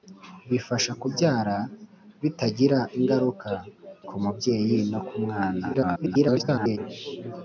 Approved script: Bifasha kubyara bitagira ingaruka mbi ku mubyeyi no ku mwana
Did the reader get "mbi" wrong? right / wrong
wrong